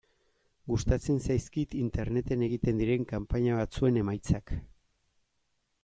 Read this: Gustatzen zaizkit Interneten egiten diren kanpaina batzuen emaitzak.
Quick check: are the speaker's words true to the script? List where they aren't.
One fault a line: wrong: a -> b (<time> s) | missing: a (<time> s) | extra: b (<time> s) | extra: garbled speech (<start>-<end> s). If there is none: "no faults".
no faults